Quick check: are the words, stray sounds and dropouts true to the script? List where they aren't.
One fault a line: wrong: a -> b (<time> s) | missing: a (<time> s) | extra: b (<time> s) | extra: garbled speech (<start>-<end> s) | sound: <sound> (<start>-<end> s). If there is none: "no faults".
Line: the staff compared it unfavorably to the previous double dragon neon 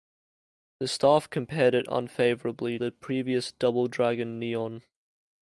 missing: to (2.8 s)